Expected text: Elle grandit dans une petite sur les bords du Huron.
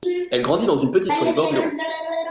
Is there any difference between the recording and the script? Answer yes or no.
no